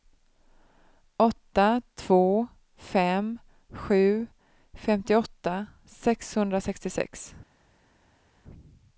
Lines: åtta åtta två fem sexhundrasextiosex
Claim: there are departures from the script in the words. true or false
true